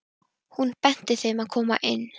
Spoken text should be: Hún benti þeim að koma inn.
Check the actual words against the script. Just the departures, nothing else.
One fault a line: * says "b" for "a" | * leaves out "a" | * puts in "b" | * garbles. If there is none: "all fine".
all fine